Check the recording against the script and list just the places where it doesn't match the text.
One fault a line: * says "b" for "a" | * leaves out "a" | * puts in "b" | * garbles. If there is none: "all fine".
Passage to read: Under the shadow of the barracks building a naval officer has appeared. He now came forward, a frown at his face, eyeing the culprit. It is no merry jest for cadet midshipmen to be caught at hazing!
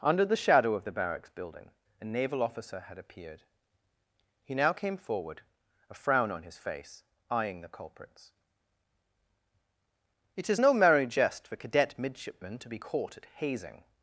* says "had" for "has"
* says "on" for "at"
* says "culprits" for "culprit"